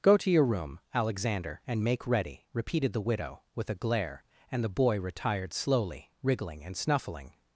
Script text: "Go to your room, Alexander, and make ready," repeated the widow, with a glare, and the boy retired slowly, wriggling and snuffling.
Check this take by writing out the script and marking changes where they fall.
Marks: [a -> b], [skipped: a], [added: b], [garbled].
"Go to your room, Alexander, and make ready," repeated the widow, with a glare, and the boy retired slowly, wriggling and snuffling.